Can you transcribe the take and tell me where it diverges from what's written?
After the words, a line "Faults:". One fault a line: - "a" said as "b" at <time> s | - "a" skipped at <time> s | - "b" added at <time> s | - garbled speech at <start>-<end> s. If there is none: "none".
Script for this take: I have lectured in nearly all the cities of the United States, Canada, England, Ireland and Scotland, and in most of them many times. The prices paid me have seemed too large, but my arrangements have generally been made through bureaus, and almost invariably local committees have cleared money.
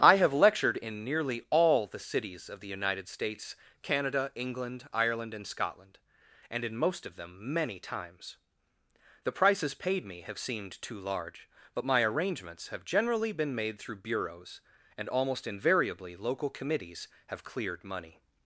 I have lectured in nearly all the cities of the United States, Canada, England, Ireland and Scotland, and in most of them many times. The prices paid me have seemed too large, but my arrangements have generally been made through bureaus, and almost invariably local committees have cleared money.
Faults:
none